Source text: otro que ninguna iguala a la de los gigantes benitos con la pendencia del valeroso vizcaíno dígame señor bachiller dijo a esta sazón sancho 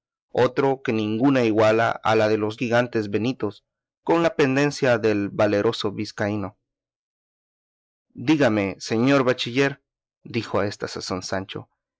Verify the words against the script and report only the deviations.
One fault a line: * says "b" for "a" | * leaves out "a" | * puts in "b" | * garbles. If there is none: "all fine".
all fine